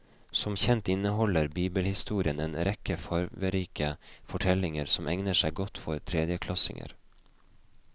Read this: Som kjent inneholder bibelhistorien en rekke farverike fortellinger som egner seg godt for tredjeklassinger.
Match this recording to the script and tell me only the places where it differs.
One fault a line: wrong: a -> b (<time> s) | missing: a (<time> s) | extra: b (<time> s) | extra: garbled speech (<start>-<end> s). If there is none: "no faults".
no faults